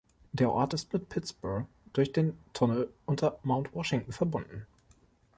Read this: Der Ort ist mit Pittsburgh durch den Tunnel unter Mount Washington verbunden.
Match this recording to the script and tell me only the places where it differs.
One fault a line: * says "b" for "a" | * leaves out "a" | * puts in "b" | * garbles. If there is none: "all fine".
all fine